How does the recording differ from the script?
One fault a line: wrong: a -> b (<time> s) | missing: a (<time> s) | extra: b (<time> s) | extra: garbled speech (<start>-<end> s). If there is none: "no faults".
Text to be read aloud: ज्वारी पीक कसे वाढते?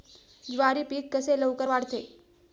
extra: लवकर (1.4 s)